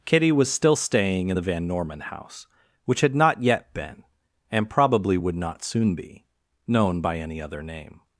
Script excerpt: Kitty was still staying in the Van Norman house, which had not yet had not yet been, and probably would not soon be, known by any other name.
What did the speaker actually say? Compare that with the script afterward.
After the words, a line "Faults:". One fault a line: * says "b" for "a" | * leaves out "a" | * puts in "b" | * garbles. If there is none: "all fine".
Kitty was still staying in the Van Norman house, which had not yet been, and probably would not soon be, known by any other name.
Faults:
* leaves out "had not yet"